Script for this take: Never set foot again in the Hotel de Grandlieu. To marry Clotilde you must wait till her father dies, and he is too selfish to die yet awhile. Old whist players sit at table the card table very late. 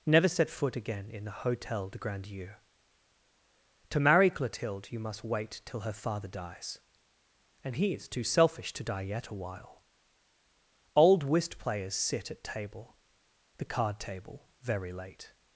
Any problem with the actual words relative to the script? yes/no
no